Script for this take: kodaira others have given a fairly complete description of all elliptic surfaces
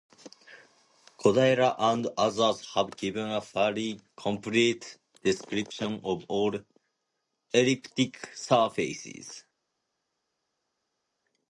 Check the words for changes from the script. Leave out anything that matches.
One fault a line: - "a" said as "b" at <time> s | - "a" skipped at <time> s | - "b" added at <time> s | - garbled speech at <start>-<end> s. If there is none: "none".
- "and" added at 1.8 s